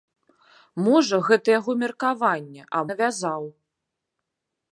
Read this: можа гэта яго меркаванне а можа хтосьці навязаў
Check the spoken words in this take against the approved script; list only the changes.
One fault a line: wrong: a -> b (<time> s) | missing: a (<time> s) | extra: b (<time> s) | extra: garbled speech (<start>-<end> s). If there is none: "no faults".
missing: можа хтосьці (2.8 s)